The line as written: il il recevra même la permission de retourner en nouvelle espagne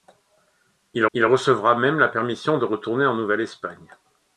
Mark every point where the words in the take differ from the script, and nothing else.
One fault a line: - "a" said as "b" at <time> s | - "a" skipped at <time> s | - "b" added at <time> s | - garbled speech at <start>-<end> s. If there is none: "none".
none